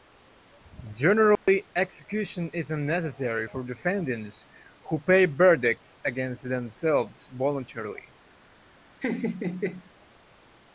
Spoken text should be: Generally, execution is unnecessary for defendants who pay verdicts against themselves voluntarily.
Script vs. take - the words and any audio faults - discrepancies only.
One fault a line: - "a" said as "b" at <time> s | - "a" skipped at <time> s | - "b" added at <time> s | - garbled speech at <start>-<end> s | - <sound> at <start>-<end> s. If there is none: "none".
- dropout at 1.4-1.5 s
- laugh at 9.0-9.9 s